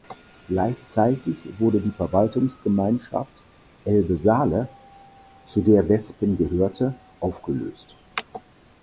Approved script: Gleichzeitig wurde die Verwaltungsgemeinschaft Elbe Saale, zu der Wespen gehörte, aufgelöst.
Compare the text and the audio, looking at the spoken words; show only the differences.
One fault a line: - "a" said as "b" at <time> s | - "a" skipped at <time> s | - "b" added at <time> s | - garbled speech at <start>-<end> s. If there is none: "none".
none